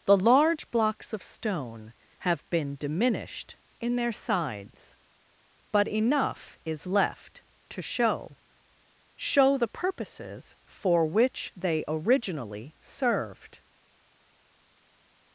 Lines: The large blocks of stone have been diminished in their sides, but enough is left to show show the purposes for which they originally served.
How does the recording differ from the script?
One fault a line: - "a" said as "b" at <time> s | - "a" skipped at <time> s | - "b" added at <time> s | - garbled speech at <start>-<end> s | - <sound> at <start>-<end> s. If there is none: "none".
none